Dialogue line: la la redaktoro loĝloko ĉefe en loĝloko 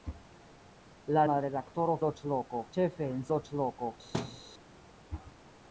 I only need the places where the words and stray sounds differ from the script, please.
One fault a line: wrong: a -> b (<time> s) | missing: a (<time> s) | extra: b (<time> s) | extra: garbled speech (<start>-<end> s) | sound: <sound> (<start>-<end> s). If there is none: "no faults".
sound: thud (4.1-4.4 s)